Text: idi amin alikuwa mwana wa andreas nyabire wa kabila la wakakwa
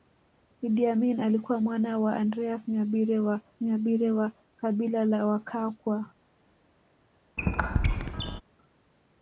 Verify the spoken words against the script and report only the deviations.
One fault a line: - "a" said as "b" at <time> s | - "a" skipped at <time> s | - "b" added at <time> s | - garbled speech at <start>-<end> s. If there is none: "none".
- "nyabire wa" added at 3.6 s